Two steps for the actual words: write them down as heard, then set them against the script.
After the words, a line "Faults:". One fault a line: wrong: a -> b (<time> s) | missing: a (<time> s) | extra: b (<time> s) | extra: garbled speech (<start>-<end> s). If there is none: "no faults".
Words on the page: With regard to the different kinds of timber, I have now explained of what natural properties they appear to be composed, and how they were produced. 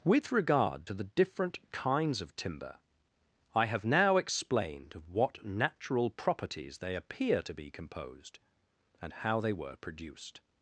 With regard to the different kinds of timber, I have now explained of what natural properties they appear to be composed, and how they were produced.
Faults:
no faults